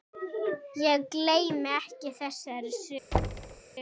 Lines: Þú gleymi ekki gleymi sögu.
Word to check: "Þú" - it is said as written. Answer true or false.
false